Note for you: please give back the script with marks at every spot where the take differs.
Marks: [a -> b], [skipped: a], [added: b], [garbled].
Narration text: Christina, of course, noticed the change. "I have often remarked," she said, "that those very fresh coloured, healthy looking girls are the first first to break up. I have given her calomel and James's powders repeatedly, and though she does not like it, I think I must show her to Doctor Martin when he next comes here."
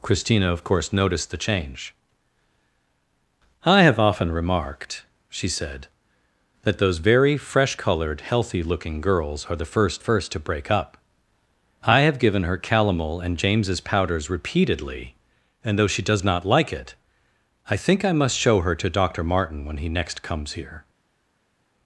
Christina, of course, noticed the change. "I have often remarked," she said, "that those very fresh coloured, healthy looking girls are the first first to break up. I have given her calomel and James's powders repeatedly, and though she does not like it, I think I must show her to Doctor Martin when he next comes here."